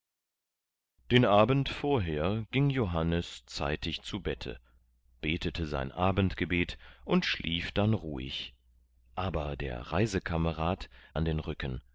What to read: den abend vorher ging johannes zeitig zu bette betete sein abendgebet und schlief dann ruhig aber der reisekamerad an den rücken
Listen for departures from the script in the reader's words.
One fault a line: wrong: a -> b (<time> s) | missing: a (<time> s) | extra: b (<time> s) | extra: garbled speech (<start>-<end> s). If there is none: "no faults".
no faults